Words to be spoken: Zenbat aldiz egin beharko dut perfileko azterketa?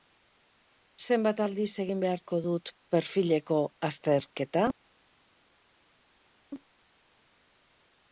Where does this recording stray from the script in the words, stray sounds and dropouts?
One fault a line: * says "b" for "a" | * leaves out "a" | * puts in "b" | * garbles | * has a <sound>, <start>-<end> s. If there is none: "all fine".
all fine